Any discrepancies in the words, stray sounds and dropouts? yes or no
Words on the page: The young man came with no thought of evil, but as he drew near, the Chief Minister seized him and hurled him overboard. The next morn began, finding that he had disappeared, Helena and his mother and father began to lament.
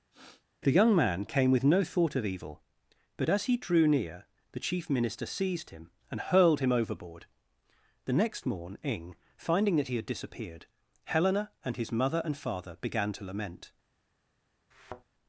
yes